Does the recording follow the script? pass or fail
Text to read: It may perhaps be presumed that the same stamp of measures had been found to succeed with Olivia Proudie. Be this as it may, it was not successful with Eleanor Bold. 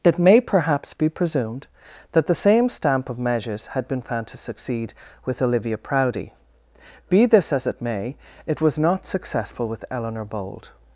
pass